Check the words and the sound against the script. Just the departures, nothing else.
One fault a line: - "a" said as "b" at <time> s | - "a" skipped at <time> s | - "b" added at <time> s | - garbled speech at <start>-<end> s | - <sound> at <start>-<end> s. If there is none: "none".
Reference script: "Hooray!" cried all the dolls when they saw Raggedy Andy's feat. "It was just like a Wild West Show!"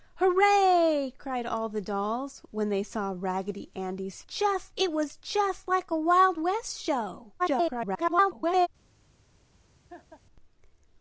- "feat" said as "just" at 4.2 s
- garbled speech at 7.4-8.7 s
- laugh at 9.9-10.2 s